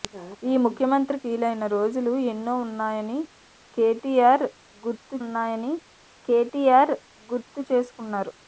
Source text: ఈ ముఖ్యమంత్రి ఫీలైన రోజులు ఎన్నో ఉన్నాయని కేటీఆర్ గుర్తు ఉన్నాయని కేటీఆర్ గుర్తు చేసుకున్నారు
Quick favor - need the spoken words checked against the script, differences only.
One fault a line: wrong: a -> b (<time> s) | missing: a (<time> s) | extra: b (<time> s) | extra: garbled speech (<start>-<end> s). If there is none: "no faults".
no faults